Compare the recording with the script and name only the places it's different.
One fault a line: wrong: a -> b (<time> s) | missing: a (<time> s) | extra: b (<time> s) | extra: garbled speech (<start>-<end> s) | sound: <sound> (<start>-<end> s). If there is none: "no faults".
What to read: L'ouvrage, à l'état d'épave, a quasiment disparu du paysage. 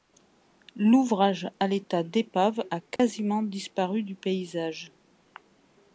sound: dropout (3.0-3.0 s)